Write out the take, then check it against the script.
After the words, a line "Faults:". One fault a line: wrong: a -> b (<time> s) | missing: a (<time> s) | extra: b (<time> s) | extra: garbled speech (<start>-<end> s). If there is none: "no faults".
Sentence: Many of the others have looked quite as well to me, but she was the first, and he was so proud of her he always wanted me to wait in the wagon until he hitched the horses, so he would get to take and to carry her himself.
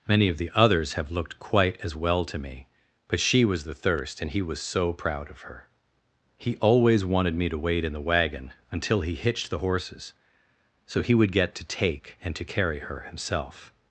Many of the others have looked quite as well to me, but she was the thirst, and he was so proud of her he always wanted me to wait in the wagon until he hitched the horses, so he would get to take and to carry her himself.
Faults:
wrong: first -> thirst (3.7 s)